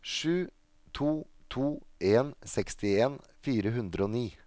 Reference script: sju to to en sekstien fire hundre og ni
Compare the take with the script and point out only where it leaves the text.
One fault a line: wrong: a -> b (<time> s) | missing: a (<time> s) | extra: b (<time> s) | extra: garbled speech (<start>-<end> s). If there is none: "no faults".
no faults